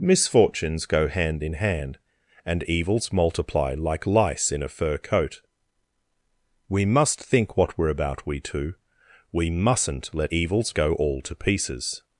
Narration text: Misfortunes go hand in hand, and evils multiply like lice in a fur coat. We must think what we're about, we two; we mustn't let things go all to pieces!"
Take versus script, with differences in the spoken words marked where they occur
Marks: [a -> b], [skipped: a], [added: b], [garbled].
Misfortunes go hand in hand, and evils multiply like lice in a fur coat. We must think what we're about, we two; we mustn't let [things -> evils] go all to pieces!"